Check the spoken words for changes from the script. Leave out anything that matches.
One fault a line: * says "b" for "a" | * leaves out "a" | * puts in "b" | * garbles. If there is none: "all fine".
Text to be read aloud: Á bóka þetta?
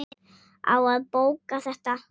* puts in "að"